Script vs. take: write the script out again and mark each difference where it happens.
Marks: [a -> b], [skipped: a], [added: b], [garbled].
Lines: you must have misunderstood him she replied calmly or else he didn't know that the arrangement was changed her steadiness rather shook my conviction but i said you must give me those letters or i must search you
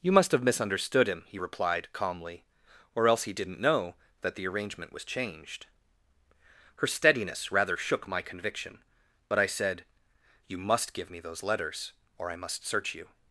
you must have misunderstood him [she -> he] replied calmly or else he didn't know that the arrangement was changed her steadiness rather shook my conviction but i said you must give me those letters or i must search you